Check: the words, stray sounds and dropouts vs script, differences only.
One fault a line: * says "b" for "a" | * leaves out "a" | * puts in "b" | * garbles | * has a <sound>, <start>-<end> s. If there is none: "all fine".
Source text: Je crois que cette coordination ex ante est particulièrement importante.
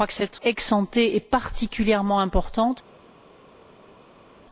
* leaves out "cette coordination"